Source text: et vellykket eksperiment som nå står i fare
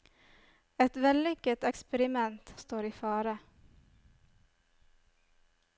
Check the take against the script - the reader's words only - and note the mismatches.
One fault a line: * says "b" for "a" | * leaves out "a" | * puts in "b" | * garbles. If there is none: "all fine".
* leaves out "som nå"